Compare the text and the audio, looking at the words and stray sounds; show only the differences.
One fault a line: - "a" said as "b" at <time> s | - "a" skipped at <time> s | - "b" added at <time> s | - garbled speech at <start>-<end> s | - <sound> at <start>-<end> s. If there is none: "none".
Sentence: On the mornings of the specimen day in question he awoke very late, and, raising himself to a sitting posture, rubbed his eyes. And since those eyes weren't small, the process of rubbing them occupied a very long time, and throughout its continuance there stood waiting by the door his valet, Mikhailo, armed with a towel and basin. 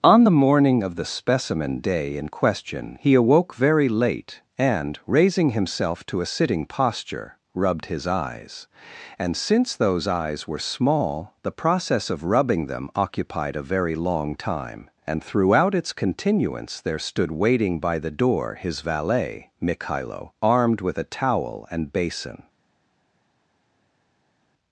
- "mornings" said as "morning" at 0.3 s
- "weren't" said as "were" at 10.5 s